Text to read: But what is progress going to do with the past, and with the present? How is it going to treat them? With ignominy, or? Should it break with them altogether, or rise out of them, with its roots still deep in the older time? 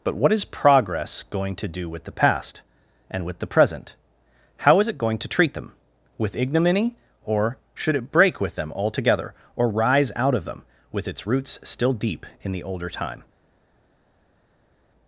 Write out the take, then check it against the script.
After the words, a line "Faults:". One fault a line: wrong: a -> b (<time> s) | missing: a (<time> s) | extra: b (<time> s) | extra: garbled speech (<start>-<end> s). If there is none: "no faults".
But what is progress going to do with the past, and with the present? How is it going to treat them? With ignominy, or? Should it break with them altogether, or rise out of them, with its roots still deep in the older time?
Faults:
no faults